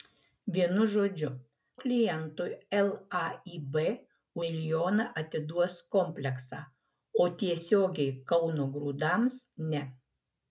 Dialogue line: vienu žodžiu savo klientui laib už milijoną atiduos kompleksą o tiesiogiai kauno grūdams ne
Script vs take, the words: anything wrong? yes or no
yes